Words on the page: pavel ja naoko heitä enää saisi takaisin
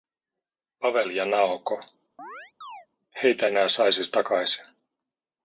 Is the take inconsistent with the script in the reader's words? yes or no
no